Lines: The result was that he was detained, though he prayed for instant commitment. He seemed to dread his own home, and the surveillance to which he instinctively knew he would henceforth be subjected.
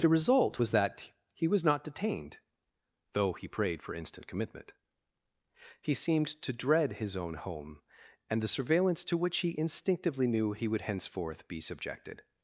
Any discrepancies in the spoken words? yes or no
yes